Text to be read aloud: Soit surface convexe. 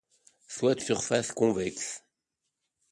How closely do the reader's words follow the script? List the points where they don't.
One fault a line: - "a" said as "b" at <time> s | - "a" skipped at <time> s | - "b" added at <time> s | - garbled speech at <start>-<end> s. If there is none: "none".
none